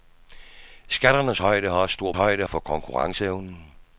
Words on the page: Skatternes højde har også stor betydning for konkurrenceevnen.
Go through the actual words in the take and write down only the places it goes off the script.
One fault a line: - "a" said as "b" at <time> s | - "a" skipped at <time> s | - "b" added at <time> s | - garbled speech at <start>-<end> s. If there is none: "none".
- "betydning" said as "højde" at 2.1 s